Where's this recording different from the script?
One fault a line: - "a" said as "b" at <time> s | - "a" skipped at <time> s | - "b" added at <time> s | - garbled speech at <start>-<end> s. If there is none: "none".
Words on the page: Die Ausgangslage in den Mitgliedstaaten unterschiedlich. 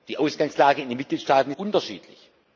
none